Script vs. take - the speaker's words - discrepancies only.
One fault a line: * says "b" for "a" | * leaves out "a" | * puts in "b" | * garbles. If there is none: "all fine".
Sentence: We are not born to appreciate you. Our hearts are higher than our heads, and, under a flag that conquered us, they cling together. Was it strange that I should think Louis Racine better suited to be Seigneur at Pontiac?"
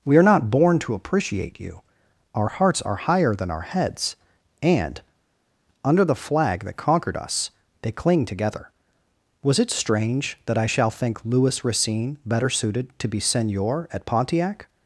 * says "the" for "a"
* says "shall" for "should"